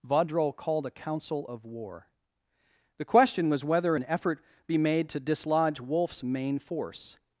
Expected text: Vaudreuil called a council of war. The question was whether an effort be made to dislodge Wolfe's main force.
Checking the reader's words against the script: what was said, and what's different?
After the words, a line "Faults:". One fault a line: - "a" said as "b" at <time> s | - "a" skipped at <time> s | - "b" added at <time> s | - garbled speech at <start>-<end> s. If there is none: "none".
Vaudreuil called a council of war. The question was whether an effort be made to dislodge Wolfe's main force.
Faults:
none